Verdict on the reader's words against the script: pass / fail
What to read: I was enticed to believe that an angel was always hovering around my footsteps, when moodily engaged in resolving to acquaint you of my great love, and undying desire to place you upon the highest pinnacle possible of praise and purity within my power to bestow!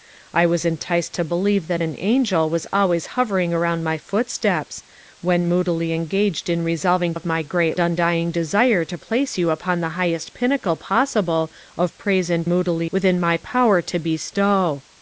fail